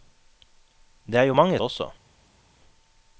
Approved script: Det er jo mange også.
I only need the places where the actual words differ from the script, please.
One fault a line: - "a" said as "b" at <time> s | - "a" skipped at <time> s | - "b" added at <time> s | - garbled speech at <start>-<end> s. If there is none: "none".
none